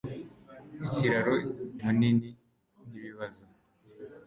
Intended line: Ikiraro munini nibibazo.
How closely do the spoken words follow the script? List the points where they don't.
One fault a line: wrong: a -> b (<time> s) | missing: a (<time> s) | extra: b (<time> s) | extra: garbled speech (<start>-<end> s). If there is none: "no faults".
no faults